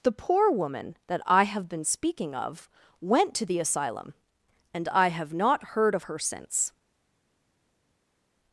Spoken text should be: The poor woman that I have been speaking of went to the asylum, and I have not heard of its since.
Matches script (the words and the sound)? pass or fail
fail